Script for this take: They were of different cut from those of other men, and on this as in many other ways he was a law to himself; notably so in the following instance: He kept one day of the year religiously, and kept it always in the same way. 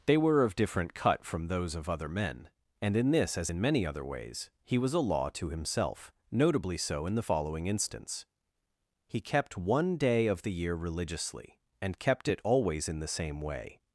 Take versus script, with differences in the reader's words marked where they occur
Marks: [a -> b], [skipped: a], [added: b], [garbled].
They were of different cut from those of other men, and [on -> in] this as in many other ways he was a law to himself; notably so in the following instance: He kept one day of the year religiously, and kept it always in the same way.